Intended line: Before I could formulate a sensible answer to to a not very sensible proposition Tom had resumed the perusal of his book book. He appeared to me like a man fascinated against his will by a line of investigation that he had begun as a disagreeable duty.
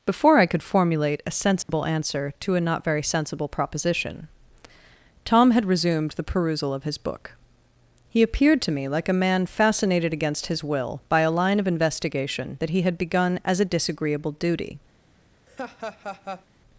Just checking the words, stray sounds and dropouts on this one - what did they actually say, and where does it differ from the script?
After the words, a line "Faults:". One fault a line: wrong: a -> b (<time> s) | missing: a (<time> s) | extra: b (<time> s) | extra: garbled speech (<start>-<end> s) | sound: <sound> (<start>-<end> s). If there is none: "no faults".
Before I could formulate a sensible answer to a not very sensible proposition Tom had resumed the perusal of his book. He appeared to me like a man fascinated against his will by a line of investigation that he had begun as a disagreeable duty.
Faults:
sound: dropout (1.6-1.7 s)
missing: to (2.5 s)
missing: book (7.3 s)
sound: laugh (15.5-16.5 s)